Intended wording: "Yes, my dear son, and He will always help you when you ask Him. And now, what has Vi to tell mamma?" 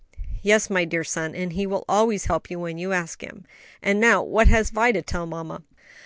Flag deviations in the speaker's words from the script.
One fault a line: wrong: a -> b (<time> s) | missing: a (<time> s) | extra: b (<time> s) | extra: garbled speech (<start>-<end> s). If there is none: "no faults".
no faults